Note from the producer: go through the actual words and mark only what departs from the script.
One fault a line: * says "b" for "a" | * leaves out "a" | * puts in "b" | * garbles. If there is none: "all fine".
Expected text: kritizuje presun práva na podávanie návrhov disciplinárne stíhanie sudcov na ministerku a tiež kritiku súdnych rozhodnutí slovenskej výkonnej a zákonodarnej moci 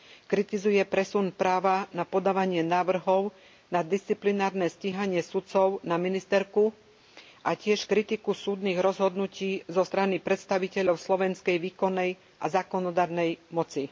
* puts in "na"
* puts in "zo strany predstaviteľov"